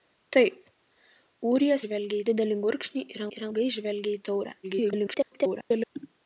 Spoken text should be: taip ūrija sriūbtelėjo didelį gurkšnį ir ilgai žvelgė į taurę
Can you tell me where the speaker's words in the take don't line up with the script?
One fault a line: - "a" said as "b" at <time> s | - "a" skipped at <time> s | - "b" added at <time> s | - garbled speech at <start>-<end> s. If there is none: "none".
- "sriūbtelėjo" said as "žvelgė" at 1.8 s
- "ir" added at 3.4 s
- garbled speech at 4.6-5.9 s